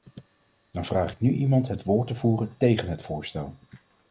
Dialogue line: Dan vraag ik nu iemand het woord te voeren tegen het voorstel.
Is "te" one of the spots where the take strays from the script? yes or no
no